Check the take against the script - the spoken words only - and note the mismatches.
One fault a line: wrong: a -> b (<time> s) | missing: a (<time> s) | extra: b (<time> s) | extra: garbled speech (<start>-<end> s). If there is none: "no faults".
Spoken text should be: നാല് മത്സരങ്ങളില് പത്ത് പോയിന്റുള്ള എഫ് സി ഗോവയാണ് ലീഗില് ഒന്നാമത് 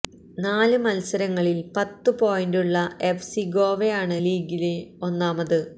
no faults